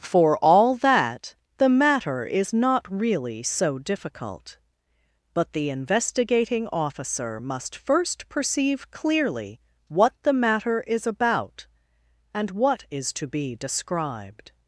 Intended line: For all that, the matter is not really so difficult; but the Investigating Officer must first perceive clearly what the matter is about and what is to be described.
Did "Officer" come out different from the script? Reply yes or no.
no